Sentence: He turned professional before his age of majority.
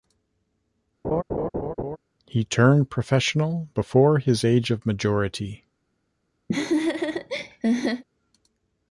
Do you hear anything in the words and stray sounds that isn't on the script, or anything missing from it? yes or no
yes